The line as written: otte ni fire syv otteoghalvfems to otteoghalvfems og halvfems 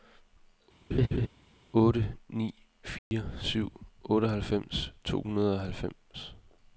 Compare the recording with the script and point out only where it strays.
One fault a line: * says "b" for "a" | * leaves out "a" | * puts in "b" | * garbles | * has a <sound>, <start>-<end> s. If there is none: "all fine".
* has a laugh, 0.9-1.3 s
* has a dropout, 3.0-3.1 s
* says "hundrede" for "otteoghalvfems"